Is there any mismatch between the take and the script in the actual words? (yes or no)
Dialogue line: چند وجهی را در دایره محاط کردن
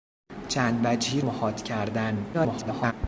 yes